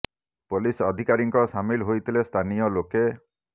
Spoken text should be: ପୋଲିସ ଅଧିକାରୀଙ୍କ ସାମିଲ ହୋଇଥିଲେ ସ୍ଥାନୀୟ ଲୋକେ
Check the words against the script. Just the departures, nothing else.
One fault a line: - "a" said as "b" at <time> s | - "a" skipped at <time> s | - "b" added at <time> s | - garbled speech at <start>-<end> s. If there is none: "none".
none